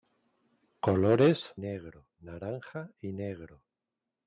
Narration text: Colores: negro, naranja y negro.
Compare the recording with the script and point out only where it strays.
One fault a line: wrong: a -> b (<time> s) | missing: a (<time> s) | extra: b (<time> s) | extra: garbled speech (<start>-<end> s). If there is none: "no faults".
no faults